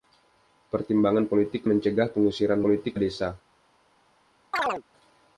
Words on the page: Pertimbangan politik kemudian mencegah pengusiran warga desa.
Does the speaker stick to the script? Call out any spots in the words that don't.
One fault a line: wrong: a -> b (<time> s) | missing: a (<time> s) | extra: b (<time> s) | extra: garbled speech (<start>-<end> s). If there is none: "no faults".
missing: kemudian (1.7 s)
wrong: warga -> politik (2.6 s)